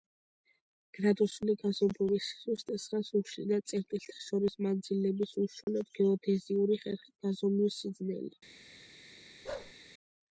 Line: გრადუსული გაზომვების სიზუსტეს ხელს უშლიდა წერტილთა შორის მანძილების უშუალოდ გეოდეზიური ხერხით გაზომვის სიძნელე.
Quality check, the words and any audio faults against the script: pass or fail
fail